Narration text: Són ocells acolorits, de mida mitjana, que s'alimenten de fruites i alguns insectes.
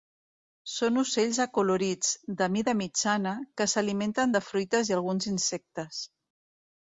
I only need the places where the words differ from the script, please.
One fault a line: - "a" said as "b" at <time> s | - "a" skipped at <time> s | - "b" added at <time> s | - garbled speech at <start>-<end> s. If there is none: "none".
none